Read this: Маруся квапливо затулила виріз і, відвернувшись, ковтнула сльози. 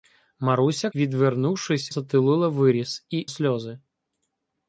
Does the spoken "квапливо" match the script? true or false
false